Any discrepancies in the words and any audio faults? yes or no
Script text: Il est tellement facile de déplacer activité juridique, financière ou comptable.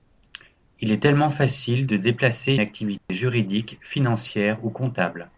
yes